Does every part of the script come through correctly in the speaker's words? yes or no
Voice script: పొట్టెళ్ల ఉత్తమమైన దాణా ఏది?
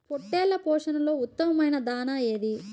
no